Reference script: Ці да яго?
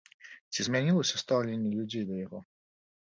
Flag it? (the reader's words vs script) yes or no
yes